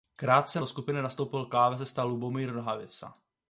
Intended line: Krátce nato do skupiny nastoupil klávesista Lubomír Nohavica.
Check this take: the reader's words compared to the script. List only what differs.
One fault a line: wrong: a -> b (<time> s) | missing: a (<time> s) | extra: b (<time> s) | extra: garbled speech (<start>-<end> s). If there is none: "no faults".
missing: nato (0.6 s)